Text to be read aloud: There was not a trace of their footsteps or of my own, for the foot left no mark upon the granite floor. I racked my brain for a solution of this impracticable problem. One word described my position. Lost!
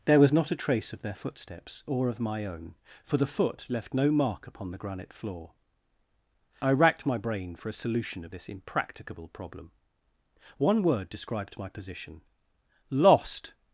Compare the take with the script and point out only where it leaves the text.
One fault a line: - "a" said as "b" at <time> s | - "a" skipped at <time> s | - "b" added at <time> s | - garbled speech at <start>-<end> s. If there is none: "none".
none